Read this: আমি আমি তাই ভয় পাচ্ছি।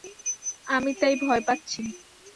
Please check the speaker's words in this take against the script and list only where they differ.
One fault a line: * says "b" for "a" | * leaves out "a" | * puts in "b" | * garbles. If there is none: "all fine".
* leaves out "আমি"